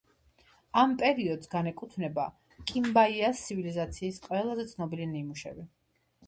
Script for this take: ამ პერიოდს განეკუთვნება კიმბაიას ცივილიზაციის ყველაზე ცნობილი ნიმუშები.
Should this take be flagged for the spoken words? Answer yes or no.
no